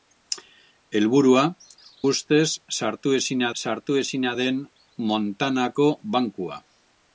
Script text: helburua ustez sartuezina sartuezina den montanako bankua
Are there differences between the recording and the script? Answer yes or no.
no